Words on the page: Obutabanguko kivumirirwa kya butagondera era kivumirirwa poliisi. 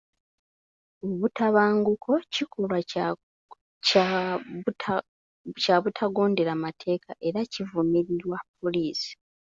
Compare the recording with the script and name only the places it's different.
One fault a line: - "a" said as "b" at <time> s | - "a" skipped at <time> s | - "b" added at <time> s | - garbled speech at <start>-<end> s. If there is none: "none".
- "kivumirirwa" said as "kikolwa" at 2.3 s
- "mateeka" added at 6.6 s